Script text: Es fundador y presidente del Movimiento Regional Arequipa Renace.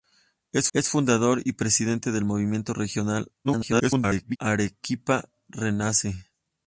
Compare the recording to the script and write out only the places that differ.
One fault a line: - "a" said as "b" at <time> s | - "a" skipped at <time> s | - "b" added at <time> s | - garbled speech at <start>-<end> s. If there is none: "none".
- "es" added at 0.7 s
- garbled speech at 3.4-4.4 s